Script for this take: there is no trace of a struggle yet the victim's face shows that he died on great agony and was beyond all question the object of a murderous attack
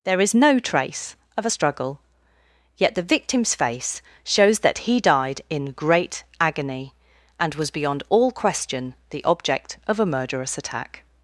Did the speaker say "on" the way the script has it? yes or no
no